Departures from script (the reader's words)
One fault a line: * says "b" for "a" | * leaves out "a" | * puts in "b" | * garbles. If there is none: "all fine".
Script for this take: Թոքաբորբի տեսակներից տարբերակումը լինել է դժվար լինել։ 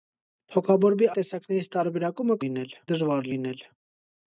all fine